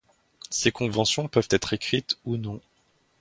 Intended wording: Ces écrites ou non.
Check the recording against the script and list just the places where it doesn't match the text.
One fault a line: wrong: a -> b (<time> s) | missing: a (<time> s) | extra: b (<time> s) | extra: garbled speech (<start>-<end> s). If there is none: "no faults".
extra: conventions peuvent être (0.7 s)